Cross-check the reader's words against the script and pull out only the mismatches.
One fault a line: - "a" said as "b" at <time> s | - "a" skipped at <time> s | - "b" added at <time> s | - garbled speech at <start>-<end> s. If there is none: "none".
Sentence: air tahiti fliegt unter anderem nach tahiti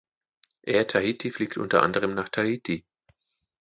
none